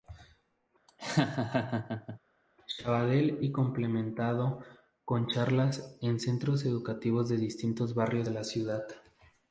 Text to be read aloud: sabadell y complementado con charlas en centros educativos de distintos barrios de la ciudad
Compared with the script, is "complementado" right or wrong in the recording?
right